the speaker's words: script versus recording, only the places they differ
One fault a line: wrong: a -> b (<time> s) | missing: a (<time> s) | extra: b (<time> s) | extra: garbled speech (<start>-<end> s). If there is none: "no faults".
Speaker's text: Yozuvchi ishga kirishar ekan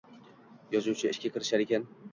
no faults